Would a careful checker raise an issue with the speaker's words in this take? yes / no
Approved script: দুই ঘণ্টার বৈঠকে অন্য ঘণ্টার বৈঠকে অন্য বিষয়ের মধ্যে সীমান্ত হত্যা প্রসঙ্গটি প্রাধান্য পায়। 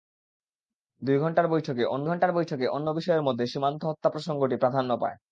no